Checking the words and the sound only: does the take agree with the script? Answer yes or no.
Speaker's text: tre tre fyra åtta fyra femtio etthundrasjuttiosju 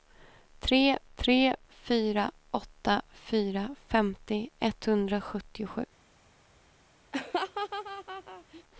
no